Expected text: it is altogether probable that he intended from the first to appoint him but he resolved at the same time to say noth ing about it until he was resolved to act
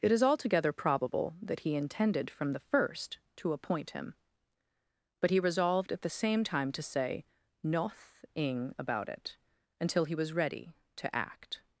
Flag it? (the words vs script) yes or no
yes